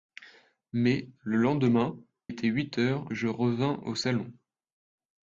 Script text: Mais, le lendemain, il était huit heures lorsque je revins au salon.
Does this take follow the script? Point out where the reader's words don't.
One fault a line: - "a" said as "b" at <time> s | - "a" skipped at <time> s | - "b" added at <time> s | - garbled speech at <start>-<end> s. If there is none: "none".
- "il" skipped at 1.9 s
- "lorsque" skipped at 3.1 s